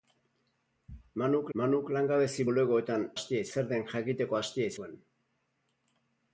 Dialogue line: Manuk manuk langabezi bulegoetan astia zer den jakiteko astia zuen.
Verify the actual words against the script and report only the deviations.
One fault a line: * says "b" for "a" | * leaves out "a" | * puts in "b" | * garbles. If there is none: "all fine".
all fine